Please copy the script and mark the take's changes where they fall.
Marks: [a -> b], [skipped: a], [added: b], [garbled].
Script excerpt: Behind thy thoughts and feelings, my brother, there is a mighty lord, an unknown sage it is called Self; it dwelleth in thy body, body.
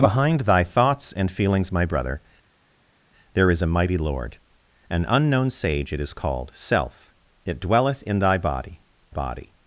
Behind thy thoughts and feelings, my brother, there is a mighty lord, an unknown sage it is called Self; it dwelleth in thy body, body.